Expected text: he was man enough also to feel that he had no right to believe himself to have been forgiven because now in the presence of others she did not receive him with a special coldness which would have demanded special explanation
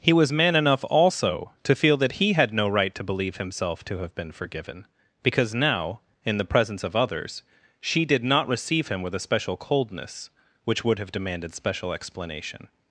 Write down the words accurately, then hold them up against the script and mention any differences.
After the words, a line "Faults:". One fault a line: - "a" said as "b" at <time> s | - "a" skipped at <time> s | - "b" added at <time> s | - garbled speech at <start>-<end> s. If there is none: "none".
he was man enough also to feel that he had no right to believe himself to have been forgiven because now in the presence of others she did not receive him with a special coldness which would have demanded special explanation
Faults:
none